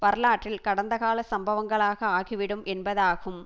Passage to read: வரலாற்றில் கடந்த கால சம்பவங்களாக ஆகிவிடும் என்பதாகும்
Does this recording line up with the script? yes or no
yes